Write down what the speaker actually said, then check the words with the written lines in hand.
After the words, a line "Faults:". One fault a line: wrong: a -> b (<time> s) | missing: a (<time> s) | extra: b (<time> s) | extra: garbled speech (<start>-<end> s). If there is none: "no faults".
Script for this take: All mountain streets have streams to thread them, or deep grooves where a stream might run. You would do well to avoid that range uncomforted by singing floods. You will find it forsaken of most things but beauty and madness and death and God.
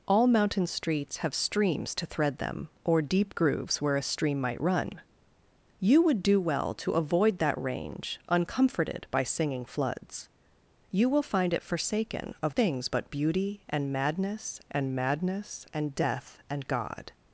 All mountain streets have streams to thread them, or deep grooves where a stream might run. You would do well to avoid that range uncomforted by singing floods. You will find it forsaken of things but beauty and madness and madness and death and God.
Faults:
missing: most (12.6 s)
extra: madness and (14.9 s)